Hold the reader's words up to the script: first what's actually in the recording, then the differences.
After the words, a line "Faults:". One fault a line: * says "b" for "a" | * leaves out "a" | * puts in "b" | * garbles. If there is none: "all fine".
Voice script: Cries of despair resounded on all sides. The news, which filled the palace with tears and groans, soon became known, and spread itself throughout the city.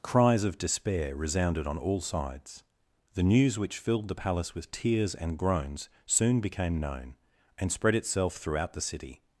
Cries of despair resounded on all sides. The news, which filled the palace with tears and groans, soon became known, and spread itself throughout the city.
Faults:
all fine